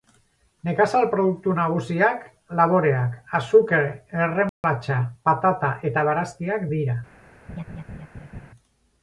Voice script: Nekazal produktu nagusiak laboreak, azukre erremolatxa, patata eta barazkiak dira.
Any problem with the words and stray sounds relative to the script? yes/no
yes